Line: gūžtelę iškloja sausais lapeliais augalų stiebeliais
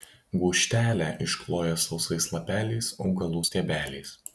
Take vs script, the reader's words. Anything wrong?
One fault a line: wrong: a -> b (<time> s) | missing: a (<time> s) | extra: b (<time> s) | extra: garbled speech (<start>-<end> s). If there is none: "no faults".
no faults